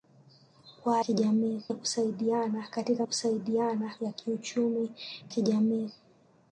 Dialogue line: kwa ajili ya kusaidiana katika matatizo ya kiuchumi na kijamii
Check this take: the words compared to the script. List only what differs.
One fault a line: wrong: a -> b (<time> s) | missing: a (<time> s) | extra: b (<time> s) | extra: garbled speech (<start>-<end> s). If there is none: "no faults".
wrong: ajili -> kijamii (1.0 s)
wrong: matatizo -> kusaidiana (3.0 s)
missing: na (4.9 s)